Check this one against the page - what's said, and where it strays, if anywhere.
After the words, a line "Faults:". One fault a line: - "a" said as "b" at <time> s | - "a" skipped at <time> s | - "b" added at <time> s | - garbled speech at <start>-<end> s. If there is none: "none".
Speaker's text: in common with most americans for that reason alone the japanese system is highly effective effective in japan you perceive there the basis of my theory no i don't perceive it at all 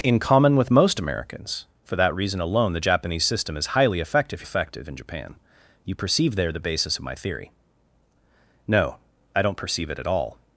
in common with most americans for that reason alone the japanese system is highly effective effective in japan you perceive there the basis of my theory no i don't perceive it at all
Faults:
none